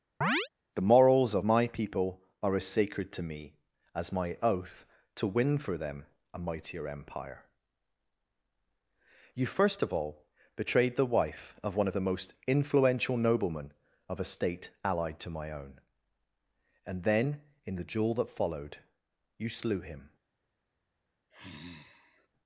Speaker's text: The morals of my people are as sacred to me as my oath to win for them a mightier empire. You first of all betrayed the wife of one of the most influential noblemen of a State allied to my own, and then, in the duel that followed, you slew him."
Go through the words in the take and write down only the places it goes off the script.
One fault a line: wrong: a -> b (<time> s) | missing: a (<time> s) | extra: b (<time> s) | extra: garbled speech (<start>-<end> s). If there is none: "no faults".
no faults